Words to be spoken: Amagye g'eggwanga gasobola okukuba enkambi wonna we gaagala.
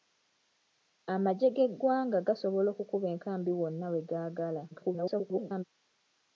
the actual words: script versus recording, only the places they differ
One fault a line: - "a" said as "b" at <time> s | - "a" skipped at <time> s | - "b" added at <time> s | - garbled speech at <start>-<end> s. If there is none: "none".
- garbled speech at 4.7-5.6 s